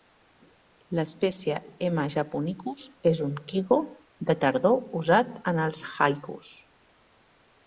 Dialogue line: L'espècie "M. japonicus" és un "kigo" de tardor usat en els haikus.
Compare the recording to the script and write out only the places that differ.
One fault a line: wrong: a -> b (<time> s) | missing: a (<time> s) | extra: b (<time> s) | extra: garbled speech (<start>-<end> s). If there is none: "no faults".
no faults